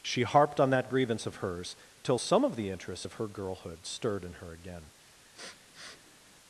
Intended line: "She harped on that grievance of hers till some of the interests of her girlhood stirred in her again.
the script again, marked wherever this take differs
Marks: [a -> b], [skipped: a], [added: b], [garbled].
"She harped on that grievance of hers till some of the interests of her girlhood stirred in her again.